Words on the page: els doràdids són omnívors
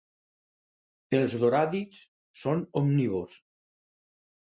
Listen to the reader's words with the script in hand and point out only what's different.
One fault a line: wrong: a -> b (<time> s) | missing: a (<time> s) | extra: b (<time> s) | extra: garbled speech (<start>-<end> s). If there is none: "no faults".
no faults